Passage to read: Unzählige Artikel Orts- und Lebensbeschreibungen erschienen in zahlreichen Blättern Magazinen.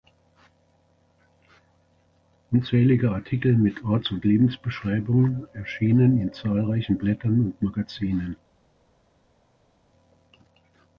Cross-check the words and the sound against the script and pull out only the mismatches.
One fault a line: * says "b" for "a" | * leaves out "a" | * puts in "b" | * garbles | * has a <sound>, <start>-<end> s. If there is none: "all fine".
* puts in "mit"
* puts in "und"